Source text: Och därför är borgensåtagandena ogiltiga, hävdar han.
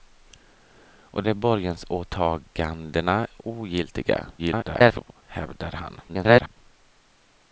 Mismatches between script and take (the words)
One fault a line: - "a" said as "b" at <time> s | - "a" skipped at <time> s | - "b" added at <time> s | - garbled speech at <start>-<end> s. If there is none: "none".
- "därför" skipped at 1.2 s
- garbled speech at 4.4-5.2 s
- garbled speech at 6.1-6.6 s